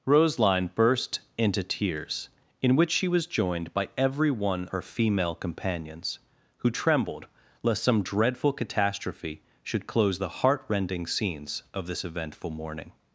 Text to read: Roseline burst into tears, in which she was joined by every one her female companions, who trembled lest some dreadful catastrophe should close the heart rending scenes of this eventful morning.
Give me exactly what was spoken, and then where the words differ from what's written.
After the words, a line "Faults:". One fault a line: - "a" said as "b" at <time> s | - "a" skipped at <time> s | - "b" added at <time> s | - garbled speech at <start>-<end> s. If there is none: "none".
Roseline burst into tears, in which she was joined by every one her female companions, who trembled lest some dreadful catastrophe should close the heart rending scenes of this eventful morning.
Faults:
none